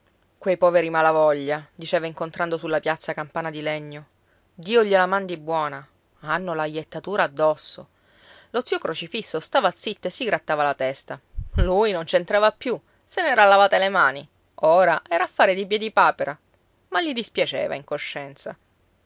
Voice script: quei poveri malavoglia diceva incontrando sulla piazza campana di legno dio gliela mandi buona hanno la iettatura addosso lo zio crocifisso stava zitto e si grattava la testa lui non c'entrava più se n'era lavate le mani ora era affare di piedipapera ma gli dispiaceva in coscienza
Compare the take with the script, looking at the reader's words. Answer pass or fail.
pass